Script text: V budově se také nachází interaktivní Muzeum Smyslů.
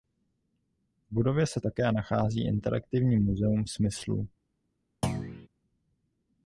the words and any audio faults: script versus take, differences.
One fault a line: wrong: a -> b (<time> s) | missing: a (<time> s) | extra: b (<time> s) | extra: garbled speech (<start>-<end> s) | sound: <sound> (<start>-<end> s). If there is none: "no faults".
sound: thud (5.0-5.5 s)